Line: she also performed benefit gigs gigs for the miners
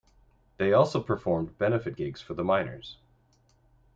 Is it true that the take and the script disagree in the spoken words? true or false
true